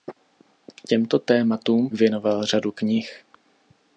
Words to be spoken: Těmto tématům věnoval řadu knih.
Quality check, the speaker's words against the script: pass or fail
pass